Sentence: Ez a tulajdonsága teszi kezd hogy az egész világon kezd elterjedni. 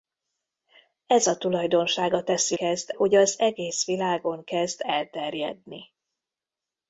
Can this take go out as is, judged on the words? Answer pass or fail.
pass